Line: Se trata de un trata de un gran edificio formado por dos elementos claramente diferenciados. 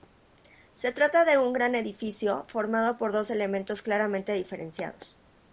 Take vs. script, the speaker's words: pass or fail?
fail